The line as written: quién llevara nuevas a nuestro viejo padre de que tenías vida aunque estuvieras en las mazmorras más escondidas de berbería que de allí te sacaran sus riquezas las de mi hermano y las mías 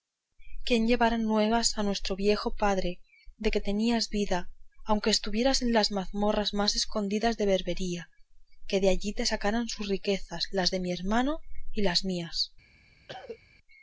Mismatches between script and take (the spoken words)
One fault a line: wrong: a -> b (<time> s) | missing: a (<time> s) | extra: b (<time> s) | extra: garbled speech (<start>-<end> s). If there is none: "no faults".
no faults